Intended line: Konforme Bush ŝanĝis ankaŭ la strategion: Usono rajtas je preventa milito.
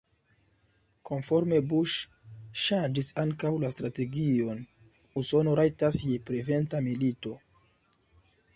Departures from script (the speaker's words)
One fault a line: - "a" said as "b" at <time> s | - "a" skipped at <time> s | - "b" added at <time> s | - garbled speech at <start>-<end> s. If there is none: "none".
none